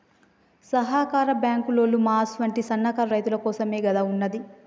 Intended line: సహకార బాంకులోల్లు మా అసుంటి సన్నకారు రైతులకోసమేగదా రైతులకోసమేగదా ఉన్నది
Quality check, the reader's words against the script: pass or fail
fail